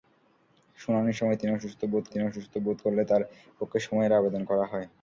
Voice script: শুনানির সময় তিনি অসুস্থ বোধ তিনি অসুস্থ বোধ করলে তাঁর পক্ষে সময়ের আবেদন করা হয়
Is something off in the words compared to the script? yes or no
no